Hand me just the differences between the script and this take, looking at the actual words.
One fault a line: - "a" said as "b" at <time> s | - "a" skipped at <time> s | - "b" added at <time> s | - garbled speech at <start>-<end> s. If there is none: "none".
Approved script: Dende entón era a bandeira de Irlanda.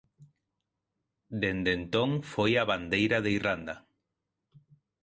- "era" said as "foi" at 2.3 s